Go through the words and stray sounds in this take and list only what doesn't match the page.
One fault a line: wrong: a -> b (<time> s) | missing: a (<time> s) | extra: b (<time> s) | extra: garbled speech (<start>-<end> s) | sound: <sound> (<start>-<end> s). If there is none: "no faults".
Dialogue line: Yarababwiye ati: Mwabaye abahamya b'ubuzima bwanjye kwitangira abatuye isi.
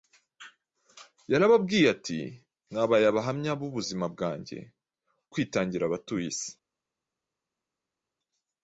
no faults